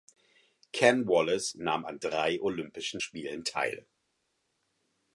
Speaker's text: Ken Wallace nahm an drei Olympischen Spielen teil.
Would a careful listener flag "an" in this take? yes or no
no